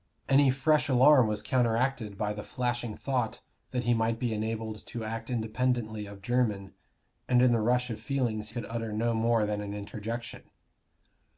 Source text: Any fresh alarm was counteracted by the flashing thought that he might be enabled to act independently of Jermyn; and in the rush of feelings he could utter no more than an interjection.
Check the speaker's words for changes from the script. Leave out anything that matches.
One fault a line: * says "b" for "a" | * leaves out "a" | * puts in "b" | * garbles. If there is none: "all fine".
* leaves out "he"